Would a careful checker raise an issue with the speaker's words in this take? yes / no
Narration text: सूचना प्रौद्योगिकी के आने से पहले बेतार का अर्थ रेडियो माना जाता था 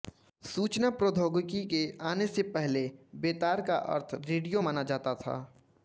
no